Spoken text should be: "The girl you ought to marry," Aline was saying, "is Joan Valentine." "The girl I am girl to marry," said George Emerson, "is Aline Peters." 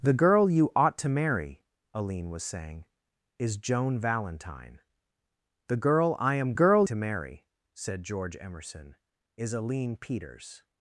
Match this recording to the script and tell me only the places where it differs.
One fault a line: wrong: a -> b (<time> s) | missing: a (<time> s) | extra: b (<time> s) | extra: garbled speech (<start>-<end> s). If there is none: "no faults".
no faults